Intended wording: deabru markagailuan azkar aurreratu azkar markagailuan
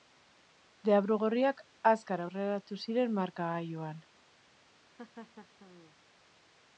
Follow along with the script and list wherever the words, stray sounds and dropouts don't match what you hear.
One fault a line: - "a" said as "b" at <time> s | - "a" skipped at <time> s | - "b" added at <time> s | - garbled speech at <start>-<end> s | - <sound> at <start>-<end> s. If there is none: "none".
- "markagailuan" said as "gorriak" at 1.2 s
- "azkar" said as "ziren" at 2.9 s
- laugh at 5.0-6.0 s